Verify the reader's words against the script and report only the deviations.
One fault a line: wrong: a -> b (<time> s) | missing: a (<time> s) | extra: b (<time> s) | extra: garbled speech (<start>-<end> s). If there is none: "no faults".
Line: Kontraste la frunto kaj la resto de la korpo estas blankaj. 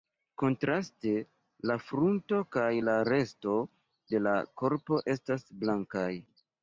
no faults